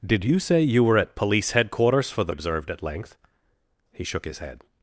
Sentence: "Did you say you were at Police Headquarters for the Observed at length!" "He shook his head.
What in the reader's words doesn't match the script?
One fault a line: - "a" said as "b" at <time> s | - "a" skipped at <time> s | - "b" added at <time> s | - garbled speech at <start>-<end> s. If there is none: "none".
none